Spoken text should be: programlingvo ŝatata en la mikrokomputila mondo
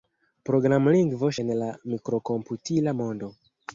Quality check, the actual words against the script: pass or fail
fail